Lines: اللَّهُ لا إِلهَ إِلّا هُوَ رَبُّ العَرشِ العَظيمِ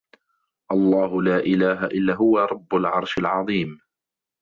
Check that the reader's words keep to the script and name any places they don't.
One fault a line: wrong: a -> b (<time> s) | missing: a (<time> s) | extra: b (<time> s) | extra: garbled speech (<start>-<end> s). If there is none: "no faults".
no faults